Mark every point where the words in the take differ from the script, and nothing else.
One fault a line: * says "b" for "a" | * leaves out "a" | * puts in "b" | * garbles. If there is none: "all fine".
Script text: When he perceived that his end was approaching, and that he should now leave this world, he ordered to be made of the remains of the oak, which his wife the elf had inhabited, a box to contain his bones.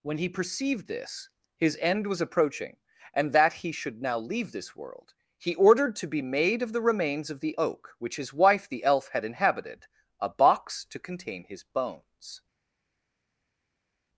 * says "this" for "that"